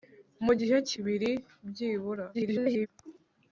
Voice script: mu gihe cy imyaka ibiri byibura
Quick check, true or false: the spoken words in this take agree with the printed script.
false